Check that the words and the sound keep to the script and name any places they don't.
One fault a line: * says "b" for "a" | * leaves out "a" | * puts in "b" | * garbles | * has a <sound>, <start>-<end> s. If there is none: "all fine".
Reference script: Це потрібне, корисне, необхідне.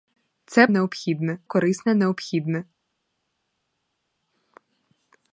* says "необхідне" for "потрібне"